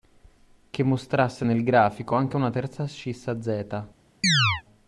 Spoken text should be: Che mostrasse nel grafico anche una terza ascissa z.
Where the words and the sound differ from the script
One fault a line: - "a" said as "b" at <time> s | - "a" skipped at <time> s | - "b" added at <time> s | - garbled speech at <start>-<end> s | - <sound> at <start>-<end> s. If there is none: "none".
- chirp at 4.2-4.6 s